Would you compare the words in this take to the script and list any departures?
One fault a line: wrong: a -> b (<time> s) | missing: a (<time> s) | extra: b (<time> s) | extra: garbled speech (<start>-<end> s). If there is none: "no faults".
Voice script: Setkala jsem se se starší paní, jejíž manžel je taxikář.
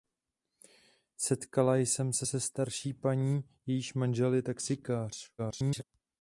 extra: garbled speech (5.4-5.8 s)